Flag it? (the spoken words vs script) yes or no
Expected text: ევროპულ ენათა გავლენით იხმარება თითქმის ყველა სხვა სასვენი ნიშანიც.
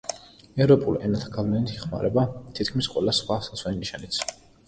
no